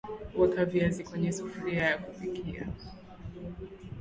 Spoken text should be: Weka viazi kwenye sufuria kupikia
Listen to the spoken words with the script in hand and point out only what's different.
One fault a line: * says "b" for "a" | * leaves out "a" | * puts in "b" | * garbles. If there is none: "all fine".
* puts in "ya"